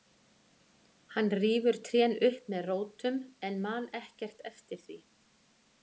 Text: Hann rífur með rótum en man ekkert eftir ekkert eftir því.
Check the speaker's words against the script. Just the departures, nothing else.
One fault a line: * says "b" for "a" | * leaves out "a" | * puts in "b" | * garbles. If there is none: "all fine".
* puts in "trén upp"
* leaves out "ekkert eftir"